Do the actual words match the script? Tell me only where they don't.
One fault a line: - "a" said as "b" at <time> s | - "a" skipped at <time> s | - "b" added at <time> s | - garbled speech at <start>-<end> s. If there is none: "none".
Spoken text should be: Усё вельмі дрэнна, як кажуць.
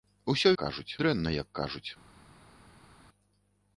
- "вельмі" said as "кажуць" at 0.6 s